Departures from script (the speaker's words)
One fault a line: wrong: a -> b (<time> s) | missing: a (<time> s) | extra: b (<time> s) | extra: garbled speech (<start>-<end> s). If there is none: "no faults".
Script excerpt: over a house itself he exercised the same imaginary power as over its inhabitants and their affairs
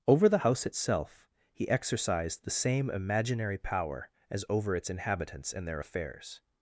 wrong: a -> the (0.3 s)